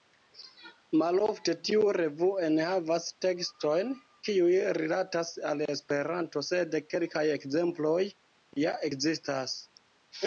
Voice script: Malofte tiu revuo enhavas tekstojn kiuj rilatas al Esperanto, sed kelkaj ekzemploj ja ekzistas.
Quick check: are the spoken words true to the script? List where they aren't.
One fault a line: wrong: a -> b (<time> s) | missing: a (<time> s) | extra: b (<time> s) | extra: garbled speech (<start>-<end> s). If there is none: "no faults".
no faults